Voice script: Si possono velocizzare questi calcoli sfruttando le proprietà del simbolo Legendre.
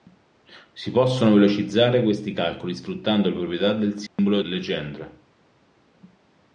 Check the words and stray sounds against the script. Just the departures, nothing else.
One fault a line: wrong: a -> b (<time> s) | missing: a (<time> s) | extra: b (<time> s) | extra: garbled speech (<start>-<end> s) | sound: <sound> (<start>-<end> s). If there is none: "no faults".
sound: dropout (4.1-4.2 s)